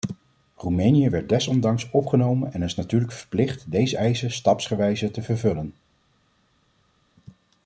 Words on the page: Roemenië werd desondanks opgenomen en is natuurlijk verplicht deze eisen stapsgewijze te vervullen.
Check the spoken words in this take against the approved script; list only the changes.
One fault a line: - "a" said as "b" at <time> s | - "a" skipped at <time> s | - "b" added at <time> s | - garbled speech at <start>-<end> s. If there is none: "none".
none